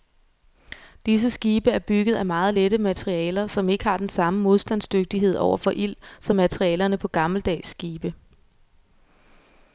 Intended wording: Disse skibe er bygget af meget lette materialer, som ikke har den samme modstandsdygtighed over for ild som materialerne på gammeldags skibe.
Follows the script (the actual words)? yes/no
yes